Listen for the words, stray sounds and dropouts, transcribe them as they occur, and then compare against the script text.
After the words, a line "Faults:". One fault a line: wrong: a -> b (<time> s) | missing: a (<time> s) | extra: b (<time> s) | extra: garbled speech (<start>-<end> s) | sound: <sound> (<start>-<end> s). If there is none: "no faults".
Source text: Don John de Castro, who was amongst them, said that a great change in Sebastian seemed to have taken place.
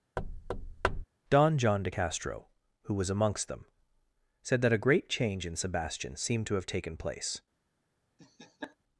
Don John de Castro, who was amongst them, said that a great change in Sebastian seemed to have taken place.
Faults:
sound: thud (0.2-1.0 s)
sound: laugh (8.2-8.8 s)